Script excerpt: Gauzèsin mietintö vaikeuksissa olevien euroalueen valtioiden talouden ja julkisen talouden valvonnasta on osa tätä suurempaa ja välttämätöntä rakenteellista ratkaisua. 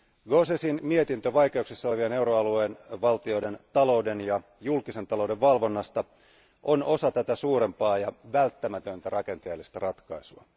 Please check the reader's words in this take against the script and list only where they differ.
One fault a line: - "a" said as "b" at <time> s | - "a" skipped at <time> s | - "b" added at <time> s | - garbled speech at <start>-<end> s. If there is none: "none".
none